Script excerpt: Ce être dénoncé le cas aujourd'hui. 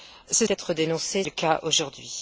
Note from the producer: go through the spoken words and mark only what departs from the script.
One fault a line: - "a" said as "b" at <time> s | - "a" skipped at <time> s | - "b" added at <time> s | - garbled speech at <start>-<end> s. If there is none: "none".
none